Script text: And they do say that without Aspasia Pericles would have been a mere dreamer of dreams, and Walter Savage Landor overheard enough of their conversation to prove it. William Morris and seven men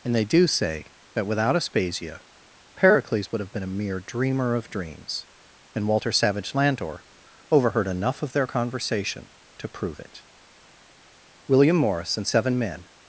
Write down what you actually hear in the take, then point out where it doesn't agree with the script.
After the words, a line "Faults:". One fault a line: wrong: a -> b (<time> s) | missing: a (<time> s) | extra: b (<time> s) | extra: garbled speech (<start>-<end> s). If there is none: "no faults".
And they do say that without Aspasia Pericles would have been a mere dreamer of dreams, and Walter Savage Landor overheard enough of their conversation to prove it. William Morris and seven men
Faults:
no faults